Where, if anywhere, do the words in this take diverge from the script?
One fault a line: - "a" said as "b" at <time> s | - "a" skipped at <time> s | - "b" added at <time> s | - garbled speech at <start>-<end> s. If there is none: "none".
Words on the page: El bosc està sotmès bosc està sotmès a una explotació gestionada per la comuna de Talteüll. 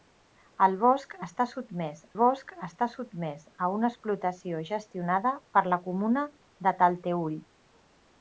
none